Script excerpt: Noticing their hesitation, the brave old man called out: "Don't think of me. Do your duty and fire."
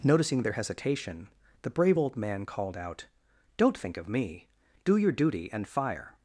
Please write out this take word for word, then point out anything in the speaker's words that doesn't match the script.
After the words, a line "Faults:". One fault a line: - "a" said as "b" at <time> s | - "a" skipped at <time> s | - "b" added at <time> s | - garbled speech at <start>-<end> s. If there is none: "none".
Noticing their hesitation, the brave old man called out: "Don't think of me. Do your duty and fire."
Faults:
none